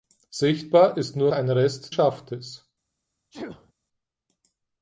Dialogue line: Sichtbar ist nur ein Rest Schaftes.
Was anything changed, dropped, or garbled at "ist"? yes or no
no